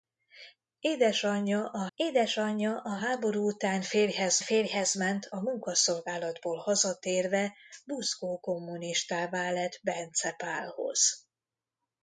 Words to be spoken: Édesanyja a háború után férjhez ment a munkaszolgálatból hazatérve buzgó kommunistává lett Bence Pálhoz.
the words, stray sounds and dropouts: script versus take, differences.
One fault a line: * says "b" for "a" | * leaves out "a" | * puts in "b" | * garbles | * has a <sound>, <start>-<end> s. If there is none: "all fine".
* puts in "édesanyja a"
* puts in "férjhez"